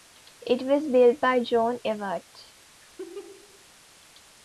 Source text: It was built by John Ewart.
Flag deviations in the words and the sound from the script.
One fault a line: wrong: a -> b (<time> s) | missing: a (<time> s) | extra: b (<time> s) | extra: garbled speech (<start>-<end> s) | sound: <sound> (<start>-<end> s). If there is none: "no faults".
sound: laugh (2.8-3.6 s)